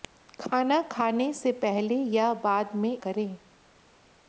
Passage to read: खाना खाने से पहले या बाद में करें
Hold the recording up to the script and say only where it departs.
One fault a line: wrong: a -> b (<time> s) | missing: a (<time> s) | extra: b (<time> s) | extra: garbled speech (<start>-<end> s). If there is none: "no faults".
no faults